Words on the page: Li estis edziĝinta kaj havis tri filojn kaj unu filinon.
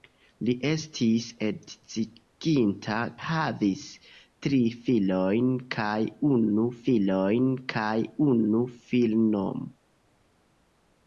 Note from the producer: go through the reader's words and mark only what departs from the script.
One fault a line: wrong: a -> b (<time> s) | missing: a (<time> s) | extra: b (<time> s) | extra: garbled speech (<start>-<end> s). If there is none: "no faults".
missing: kaj (3.0 s)
extra: filojn kaj unu (6.9 s)